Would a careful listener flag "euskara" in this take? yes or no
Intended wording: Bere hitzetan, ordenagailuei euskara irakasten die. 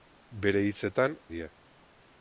yes